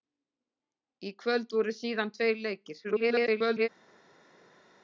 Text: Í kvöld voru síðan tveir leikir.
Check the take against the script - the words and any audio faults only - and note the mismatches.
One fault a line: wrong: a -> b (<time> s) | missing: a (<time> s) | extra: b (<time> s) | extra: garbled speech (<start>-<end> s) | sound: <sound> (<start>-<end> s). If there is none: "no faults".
extra: garbled speech (2.8-3.7 s)